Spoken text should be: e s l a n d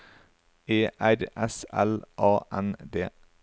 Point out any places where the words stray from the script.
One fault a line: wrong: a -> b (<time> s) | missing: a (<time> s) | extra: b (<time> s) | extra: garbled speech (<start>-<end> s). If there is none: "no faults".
extra: r (1.0 s)